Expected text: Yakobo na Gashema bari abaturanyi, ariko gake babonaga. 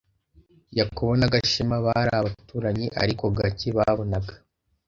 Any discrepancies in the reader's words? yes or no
no